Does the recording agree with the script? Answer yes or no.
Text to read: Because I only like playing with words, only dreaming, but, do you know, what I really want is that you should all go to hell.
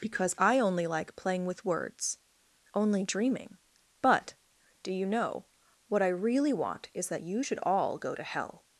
yes